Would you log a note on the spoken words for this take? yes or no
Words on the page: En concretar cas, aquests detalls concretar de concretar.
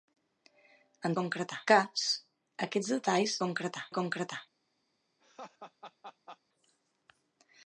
no